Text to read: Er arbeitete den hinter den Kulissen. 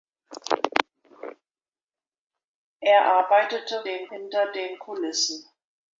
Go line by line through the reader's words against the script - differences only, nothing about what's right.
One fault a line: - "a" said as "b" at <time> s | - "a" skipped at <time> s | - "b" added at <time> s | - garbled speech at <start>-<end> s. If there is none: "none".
none